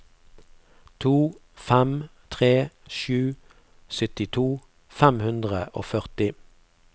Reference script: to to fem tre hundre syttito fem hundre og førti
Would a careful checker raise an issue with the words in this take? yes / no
yes